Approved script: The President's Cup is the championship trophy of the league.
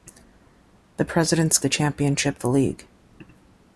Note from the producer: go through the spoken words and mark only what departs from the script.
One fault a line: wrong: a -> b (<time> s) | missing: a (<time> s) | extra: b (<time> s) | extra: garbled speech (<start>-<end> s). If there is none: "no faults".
missing: Cup is (1.6 s)
missing: trophy of (2.4 s)